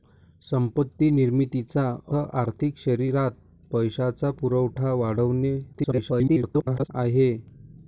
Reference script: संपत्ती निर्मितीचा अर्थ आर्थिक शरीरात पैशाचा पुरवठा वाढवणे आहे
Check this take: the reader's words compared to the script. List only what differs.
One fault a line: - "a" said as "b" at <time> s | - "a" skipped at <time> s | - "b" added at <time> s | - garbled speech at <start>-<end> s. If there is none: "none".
- "अर्थ" skipped at 1.8 s
- garbled speech at 5.7-6.9 s